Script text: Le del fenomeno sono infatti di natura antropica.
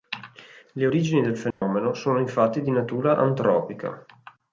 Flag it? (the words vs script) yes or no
yes